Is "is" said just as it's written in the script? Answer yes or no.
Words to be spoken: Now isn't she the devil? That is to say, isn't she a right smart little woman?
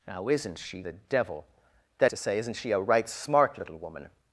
no